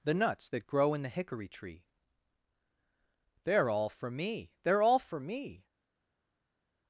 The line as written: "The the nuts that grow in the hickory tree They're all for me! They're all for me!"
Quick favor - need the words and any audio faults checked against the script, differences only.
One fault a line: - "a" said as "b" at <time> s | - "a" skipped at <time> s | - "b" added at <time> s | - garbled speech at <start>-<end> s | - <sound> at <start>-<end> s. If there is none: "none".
- "the" skipped at 0.1 s